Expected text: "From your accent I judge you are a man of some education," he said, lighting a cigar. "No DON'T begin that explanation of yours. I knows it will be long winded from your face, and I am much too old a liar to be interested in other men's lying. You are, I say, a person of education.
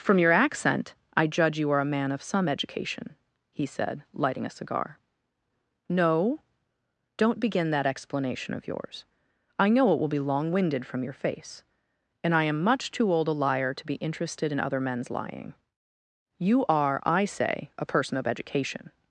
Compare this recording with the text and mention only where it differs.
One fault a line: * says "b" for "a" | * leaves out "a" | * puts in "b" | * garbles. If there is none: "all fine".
* says "know" for "knows"